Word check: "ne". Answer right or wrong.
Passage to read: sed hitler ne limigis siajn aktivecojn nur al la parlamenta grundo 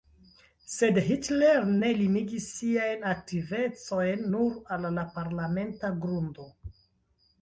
right